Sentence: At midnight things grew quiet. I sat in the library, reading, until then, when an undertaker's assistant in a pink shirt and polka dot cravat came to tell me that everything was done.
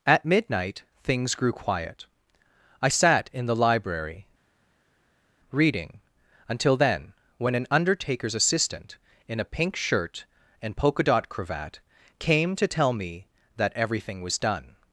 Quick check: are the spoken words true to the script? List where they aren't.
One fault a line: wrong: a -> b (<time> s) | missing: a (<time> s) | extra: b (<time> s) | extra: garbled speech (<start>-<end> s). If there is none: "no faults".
no faults